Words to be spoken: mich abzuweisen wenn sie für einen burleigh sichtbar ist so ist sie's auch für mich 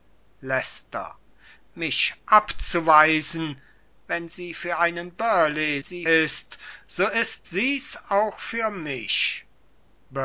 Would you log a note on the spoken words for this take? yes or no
yes